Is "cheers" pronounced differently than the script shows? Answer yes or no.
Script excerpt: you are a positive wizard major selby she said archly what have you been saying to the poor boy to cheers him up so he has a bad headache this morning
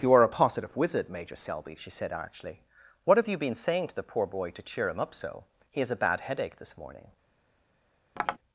yes